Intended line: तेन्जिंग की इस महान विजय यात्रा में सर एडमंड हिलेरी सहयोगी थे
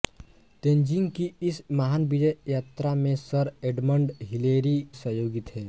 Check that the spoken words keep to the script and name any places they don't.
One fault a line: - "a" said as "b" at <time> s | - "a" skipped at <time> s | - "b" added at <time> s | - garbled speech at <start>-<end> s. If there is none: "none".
none